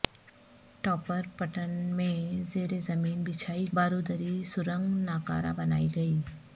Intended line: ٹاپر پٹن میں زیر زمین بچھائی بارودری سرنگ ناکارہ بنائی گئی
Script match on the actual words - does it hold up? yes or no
yes